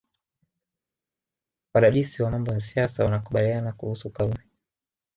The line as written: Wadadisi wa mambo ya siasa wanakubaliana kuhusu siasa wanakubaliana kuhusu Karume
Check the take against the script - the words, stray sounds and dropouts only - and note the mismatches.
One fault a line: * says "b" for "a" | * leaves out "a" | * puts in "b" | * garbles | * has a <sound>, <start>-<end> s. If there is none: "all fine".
* leaves out "siasa wanakubaliana kuhusu"